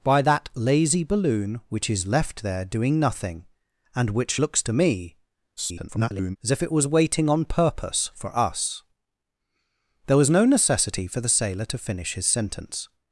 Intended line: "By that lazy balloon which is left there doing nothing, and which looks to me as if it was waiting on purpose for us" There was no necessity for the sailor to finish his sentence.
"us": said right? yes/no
yes